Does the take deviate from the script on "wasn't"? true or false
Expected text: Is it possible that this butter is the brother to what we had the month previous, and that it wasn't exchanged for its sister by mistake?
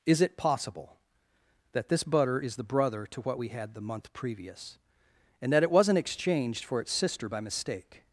false